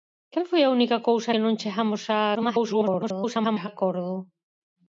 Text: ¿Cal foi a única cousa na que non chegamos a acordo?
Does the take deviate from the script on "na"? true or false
true